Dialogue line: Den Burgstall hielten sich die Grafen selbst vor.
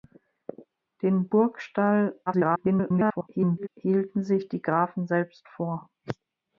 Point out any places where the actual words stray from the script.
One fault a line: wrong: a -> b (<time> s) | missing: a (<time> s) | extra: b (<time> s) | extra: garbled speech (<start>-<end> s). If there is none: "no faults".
extra: garbled speech (2.3-3.7 s)